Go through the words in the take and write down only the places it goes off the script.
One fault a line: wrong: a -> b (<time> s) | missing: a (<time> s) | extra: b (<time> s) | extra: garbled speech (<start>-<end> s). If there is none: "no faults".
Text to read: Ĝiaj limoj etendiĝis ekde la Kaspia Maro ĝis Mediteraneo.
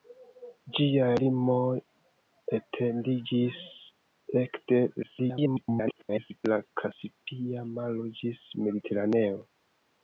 extra: garbled speech (5.0-6.4 s)